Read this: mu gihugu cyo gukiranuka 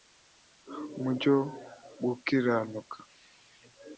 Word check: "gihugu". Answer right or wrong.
wrong